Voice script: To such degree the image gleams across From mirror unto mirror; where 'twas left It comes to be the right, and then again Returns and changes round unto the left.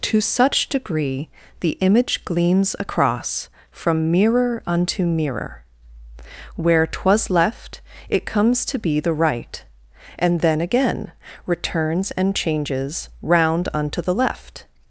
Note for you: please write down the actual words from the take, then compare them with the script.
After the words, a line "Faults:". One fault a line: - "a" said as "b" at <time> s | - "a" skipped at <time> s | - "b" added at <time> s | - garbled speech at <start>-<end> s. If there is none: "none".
To such degree the image gleams across From mirror unto mirror; where 'twas left It comes to be the right, and then again Returns and changes round unto the left.
Faults:
none